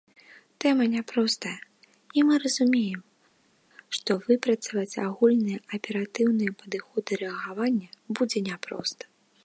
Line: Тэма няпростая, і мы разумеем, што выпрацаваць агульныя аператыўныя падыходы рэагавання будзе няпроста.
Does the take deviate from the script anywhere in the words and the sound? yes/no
no